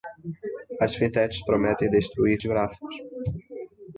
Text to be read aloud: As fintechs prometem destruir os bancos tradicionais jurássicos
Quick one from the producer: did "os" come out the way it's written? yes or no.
no